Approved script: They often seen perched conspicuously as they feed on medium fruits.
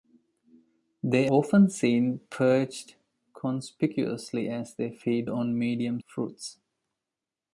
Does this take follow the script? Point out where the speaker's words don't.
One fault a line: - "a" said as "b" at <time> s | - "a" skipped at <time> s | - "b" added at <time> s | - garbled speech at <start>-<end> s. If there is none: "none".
none